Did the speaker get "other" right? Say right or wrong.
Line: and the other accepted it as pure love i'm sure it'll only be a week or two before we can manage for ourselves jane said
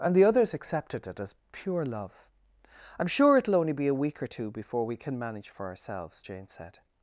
wrong